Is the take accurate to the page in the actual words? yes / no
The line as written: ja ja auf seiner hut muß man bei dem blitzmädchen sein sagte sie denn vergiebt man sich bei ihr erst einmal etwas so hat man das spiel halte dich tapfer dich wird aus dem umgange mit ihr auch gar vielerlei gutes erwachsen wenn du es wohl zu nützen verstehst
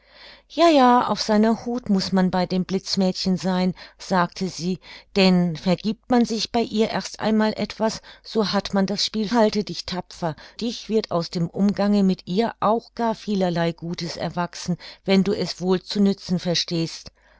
yes